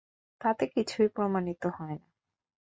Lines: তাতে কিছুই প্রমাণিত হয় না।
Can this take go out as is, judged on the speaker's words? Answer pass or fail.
pass